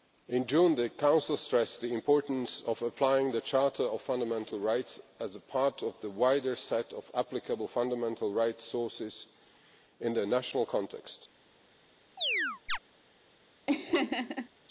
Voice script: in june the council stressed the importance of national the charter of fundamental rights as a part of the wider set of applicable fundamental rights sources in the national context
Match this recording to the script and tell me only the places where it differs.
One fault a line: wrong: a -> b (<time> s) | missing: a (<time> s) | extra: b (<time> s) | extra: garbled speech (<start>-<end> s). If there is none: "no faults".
wrong: national -> applying (2.8 s)